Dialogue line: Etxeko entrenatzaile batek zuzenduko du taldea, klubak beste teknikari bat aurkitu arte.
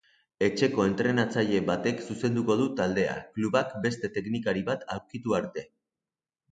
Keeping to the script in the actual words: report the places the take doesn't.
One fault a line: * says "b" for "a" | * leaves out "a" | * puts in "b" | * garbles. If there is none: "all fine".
all fine